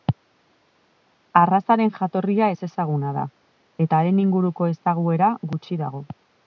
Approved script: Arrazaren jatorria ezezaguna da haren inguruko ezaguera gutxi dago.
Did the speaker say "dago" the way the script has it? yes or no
yes